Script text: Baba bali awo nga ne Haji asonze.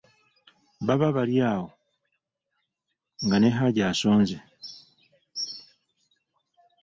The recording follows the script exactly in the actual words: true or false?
true